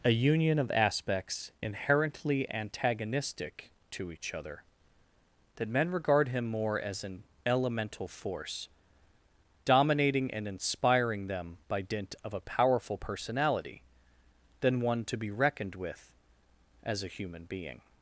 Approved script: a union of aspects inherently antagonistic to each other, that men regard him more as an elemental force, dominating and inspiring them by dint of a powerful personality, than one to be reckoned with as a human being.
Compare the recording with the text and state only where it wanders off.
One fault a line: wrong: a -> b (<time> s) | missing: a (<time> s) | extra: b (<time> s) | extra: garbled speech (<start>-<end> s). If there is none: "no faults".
no faults